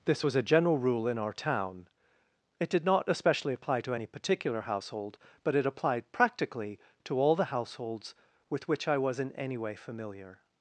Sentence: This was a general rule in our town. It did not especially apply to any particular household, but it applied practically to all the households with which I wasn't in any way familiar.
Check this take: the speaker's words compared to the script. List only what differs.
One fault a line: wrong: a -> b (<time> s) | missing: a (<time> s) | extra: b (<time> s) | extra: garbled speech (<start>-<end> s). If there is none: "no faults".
wrong: wasn't -> was (9.0 s)